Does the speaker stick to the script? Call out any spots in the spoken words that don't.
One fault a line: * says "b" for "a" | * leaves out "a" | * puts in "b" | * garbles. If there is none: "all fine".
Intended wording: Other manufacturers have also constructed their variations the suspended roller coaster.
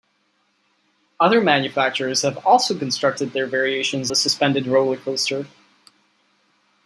all fine